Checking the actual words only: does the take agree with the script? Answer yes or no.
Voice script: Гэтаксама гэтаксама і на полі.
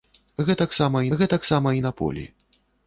yes